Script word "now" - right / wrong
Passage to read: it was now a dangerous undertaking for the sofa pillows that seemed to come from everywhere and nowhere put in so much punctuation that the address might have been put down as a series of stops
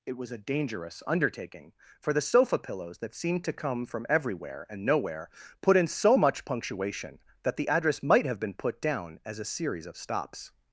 wrong